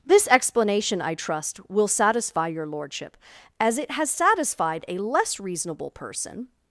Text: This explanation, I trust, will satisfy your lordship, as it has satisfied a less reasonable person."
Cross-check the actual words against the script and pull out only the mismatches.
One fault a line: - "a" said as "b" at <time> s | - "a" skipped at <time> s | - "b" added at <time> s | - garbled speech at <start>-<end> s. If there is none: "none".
none